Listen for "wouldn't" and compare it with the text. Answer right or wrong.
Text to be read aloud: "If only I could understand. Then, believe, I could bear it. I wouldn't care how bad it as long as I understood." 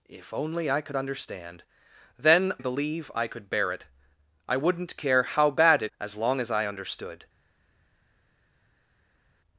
right